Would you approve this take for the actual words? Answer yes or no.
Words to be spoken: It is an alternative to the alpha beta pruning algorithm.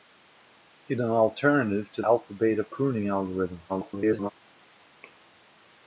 no